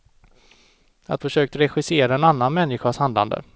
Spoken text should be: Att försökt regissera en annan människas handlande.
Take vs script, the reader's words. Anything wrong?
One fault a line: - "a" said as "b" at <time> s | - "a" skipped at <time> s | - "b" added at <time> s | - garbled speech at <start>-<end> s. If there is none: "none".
none